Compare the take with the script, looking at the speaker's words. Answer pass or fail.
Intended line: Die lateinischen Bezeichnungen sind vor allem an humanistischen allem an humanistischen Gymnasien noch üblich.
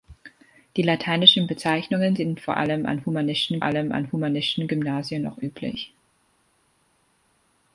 pass